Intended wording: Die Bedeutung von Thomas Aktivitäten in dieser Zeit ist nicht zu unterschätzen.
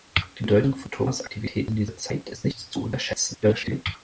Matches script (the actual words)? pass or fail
fail